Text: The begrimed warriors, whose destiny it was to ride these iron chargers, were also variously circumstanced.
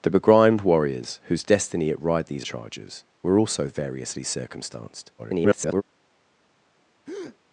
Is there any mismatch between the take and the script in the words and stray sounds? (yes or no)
yes